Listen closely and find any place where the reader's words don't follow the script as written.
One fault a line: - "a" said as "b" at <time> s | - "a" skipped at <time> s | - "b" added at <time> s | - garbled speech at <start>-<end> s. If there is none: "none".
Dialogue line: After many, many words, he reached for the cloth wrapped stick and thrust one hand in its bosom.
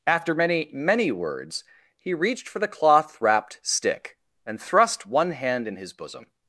- "its" said as "his" at 5.8 s